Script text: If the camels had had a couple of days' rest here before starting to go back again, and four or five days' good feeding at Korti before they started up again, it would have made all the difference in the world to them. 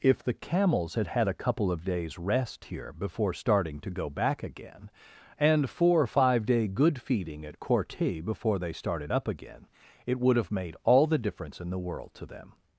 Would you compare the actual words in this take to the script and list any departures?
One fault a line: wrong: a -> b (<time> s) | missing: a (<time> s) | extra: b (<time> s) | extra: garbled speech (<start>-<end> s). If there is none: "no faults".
wrong: days -> day (6.5 s)